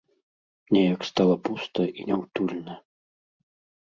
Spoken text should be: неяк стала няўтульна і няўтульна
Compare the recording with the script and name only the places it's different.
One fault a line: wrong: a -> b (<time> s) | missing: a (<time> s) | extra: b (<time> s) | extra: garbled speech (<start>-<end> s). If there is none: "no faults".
wrong: няўтульна -> пуста (1.5 s)